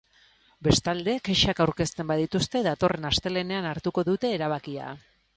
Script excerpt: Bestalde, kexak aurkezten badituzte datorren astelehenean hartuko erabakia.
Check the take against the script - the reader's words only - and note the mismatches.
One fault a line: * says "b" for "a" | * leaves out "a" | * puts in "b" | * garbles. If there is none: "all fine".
* puts in "dute"